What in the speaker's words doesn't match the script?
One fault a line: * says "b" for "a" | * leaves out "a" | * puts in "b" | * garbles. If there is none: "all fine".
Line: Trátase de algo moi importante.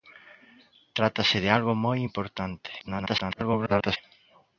* garbles